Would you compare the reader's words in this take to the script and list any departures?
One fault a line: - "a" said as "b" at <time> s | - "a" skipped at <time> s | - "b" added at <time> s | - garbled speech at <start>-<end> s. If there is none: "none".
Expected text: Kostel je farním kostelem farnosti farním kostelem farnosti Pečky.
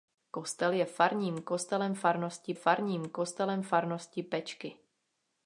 none